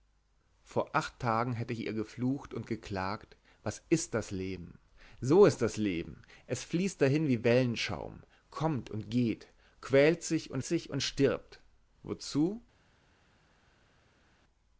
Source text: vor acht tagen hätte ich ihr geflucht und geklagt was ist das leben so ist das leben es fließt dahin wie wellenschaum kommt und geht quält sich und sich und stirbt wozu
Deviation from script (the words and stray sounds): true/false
false